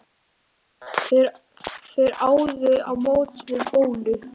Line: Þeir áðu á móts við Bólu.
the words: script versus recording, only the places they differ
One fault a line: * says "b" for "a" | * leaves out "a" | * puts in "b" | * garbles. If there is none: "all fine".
all fine